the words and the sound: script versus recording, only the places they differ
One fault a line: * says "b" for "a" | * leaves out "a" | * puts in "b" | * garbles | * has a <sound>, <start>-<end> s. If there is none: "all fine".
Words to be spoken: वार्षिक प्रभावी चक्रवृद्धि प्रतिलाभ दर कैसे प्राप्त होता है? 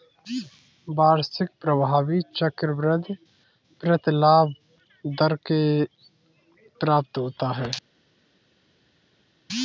* leaves out "कैसे"